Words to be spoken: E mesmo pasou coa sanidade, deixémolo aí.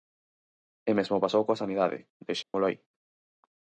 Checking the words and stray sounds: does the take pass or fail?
fail